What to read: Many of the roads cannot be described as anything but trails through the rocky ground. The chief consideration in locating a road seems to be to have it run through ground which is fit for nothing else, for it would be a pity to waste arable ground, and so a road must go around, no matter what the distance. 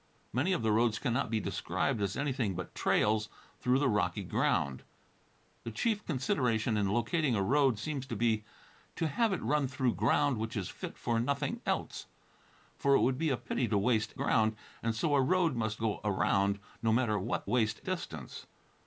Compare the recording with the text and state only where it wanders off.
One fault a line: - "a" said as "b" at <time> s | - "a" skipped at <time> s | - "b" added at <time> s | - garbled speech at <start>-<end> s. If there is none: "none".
- "arable" skipped at 14.2 s
- "the" said as "waste" at 17.4 s